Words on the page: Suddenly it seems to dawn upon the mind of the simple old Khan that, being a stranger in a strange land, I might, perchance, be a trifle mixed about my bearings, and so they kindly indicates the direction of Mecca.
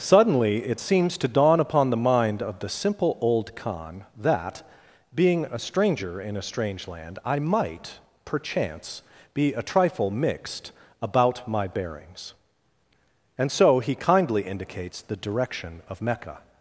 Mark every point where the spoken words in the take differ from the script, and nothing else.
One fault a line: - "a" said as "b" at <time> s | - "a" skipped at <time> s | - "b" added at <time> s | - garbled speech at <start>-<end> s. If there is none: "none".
- "they" said as "he" at 13.8 s